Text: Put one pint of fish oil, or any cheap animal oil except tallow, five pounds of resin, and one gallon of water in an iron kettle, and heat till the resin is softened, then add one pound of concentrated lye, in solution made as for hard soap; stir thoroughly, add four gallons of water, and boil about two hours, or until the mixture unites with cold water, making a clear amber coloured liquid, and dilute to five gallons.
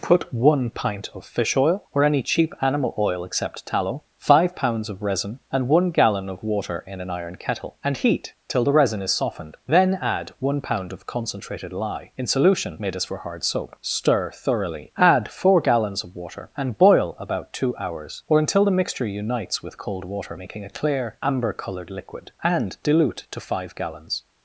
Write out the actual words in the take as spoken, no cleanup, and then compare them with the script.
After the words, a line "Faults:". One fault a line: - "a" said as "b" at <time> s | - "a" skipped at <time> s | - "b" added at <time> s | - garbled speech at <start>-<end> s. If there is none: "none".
Put one pint of fish oil, or any cheap animal oil except tallow, five pounds of resin, and one gallon of water in an iron kettle, and heat till the resin is softened, then add one pound of concentrated lye, in solution made as for hard soap; stir thoroughly, add four gallons of water, and boil about two hours, or until the mixture unites with cold water, making a clear amber coloured liquid, and dilute to five gallons.
Faults:
none